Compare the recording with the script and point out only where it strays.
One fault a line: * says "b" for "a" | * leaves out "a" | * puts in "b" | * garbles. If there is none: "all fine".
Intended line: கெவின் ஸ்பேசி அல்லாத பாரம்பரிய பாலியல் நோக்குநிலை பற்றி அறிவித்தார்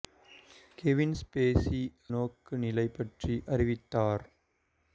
* leaves out "அல்லாத பாரம்பரிய பாலியல்"